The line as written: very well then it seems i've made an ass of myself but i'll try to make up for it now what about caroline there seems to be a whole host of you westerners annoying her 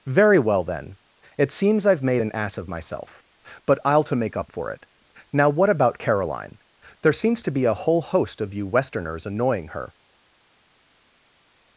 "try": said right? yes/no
no